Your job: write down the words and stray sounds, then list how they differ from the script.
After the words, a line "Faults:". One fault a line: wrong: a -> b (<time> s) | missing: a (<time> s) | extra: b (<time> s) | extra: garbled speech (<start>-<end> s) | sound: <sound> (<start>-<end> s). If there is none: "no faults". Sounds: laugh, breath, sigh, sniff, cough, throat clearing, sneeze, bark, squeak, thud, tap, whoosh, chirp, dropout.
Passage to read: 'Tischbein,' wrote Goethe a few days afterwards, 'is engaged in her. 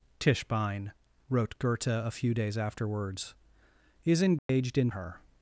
'Tischbein,' wrote Goethe a few days afterwards, 'is engaged in her.
Faults:
sound: dropout (4.4-4.5 s)